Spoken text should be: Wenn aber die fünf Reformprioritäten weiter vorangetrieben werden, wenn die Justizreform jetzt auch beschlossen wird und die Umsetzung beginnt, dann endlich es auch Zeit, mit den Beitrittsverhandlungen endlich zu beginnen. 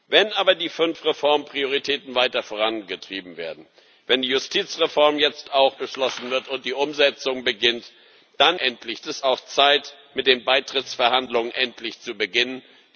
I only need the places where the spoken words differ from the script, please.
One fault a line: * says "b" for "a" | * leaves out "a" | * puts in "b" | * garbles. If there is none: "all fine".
all fine